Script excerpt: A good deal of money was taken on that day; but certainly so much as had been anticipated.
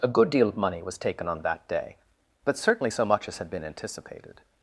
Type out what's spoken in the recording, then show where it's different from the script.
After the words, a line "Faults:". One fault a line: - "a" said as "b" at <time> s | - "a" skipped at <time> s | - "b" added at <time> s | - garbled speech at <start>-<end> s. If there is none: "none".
A good deal of money was taken on that day; but certainly so much as had been anticipated.
Faults:
none